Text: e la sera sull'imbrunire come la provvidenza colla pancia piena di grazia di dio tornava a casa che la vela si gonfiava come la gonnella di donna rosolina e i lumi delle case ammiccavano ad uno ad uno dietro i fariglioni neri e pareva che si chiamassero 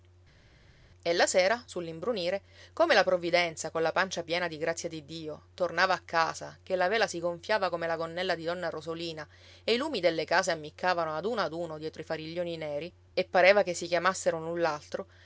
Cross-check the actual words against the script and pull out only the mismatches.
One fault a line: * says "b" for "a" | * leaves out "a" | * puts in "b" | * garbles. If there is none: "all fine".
all fine